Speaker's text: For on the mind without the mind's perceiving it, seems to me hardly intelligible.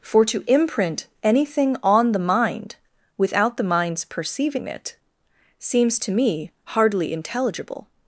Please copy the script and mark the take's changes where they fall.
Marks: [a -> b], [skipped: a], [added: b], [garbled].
For [added: to imprint anything] on the mind without the mind's perceiving it, seems to me hardly intelligible.